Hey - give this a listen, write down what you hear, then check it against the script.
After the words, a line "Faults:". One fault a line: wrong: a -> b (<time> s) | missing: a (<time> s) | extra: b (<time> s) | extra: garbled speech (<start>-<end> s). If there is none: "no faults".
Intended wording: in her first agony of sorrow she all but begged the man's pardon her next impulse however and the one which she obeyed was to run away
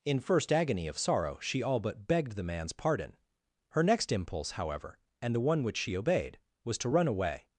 in first agony of sorrow she all but begged the man's pardon her next impulse however and the one which she obeyed was to run away
Faults:
missing: her (0.2 s)